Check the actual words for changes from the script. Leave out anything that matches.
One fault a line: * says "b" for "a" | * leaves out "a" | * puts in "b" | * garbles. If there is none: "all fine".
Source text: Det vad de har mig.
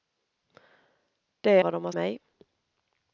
all fine